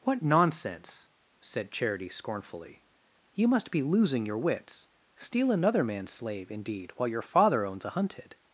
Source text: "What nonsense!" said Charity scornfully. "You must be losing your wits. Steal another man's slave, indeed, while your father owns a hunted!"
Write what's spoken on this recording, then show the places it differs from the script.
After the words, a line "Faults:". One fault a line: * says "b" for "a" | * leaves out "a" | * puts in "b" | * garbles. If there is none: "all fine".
"What nonsense!" said Charity scornfully. "You must be losing your wits. Steal another man's slave, indeed, while your father owns a hunted!"
Faults:
all fine